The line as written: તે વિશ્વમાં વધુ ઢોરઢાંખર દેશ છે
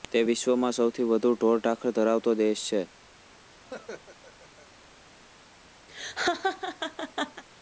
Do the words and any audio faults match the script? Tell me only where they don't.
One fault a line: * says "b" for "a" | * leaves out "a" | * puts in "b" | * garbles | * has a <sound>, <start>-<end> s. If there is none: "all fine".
* puts in "સૌથી"
* puts in "ધરાવતો"
* has a laugh, 3.7-4.7 s
* has a laugh, 5.9-7.4 s